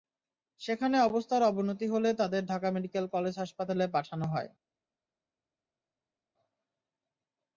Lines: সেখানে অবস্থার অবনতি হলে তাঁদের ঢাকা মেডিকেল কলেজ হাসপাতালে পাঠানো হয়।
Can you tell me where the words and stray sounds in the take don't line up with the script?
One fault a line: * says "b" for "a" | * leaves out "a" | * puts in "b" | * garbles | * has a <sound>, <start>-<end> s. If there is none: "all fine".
all fine